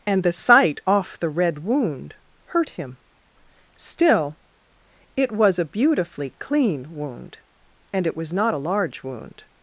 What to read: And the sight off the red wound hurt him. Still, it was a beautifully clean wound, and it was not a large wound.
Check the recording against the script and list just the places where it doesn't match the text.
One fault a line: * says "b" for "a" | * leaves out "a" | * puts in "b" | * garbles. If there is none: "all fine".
all fine